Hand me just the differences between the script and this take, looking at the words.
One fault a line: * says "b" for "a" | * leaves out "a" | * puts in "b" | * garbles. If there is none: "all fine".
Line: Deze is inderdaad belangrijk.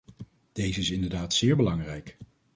* puts in "zeer"